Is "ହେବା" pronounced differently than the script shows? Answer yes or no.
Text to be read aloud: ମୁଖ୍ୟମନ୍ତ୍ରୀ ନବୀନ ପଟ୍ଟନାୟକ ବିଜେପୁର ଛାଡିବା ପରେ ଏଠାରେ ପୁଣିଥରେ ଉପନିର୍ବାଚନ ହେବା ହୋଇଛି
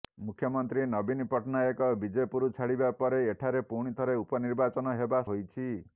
no